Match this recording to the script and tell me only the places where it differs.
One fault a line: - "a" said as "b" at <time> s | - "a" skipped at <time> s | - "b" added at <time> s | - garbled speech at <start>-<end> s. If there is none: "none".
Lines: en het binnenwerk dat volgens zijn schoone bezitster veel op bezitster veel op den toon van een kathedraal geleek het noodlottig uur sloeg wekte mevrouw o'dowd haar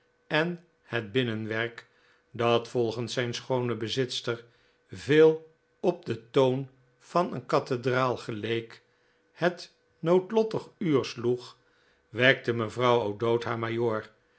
- "bezitster veel op" skipped at 6.0 s